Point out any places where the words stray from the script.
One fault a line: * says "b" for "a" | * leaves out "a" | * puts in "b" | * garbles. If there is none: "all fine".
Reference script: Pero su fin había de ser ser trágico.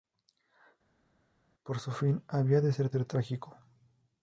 all fine